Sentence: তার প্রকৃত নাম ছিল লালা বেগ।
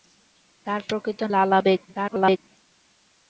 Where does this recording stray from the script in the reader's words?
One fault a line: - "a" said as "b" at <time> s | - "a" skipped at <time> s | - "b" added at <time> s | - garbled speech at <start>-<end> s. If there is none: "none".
- "নাম ছিল" skipped at 1.2 s
- garbled speech at 1.9-2.4 s